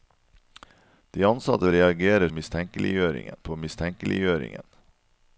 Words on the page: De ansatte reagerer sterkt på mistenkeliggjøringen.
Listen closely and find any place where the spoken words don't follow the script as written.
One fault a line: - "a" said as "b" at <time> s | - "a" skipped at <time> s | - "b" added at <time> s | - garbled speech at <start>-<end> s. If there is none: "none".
- "sterkt" said as "mistenkeliggjøringen" at 2.3 s